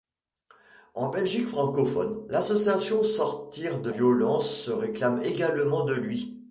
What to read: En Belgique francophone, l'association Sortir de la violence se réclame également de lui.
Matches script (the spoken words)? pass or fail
fail